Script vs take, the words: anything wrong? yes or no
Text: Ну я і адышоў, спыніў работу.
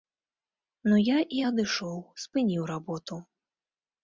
no